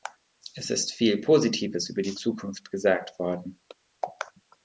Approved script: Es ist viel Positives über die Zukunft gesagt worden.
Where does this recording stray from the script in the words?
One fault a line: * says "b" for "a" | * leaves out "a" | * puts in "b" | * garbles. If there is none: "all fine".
all fine